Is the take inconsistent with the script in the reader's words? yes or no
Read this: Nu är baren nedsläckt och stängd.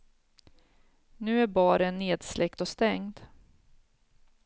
no